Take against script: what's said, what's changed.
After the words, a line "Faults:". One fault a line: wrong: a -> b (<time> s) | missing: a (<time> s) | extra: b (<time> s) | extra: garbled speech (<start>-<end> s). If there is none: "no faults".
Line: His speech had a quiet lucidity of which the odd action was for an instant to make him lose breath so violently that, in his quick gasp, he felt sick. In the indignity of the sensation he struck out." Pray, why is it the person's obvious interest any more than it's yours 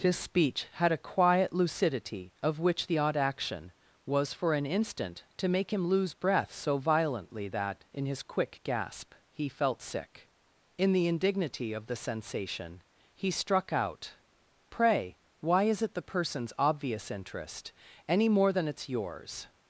His speech had a quiet lucidity of which the odd action was for an instant to make him lose breath so violently that, in his quick gasp, he felt sick. In the indignity of the sensation he struck out." Pray, why is it the person's obvious interest any more than it's yours
Faults:
no faults